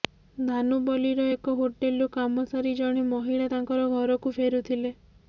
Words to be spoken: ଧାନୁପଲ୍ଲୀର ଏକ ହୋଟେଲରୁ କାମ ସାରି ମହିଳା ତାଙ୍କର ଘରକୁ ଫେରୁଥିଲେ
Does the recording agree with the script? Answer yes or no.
no